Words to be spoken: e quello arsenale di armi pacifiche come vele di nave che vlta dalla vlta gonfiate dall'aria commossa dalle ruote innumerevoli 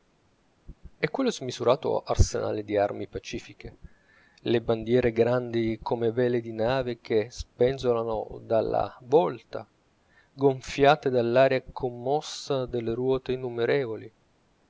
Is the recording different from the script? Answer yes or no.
yes